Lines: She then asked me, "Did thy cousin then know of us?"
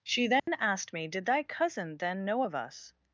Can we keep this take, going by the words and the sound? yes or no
no